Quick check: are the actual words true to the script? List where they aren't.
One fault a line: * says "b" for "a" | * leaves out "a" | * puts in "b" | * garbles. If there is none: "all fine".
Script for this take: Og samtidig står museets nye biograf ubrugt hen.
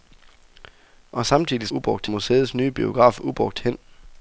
* says "ubrugt" for "står"